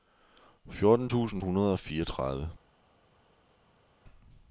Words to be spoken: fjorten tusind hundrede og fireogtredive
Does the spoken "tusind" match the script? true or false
true